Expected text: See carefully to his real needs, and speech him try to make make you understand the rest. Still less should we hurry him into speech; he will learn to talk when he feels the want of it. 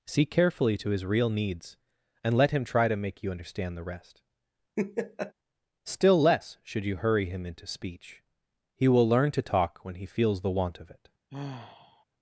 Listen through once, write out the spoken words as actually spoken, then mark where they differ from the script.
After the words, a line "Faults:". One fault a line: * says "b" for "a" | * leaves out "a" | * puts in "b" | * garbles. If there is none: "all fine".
See carefully to his real needs, and let him try to make you understand the rest. Still less should you hurry him into speech; he will learn to talk when he feels the want of it.
Faults:
* says "let" for "speech"
* leaves out "make"
* says "you" for "we"